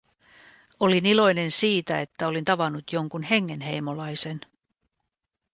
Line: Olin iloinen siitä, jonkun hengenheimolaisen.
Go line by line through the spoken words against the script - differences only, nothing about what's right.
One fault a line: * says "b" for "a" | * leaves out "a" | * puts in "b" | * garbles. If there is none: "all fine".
* puts in "että olin tavannut"